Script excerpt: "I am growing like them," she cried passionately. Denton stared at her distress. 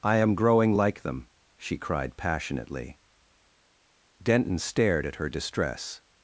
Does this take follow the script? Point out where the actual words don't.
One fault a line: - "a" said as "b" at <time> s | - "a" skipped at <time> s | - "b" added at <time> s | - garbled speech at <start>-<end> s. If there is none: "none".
none